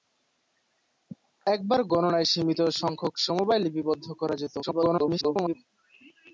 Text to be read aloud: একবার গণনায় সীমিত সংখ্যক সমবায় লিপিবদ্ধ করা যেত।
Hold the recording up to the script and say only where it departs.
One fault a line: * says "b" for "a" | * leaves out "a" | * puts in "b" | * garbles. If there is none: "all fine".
* garbles